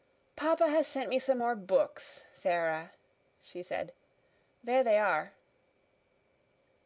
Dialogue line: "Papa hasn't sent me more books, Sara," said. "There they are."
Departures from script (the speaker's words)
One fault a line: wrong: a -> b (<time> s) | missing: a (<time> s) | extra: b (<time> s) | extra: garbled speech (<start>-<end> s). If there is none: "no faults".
wrong: hasn't -> has (0.7 s)
extra: some (1.2 s)
extra: she (3.4 s)